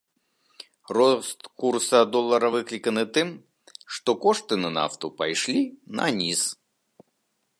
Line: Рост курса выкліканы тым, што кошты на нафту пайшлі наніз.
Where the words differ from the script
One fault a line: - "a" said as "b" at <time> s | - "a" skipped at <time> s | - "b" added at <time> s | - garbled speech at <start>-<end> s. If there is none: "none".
- "долара" added at 2.1 s